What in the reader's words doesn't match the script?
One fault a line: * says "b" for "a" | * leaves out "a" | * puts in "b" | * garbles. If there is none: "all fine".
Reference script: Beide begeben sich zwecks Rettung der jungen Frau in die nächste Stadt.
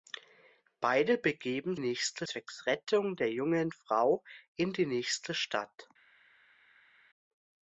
* says "nächste" for "sich"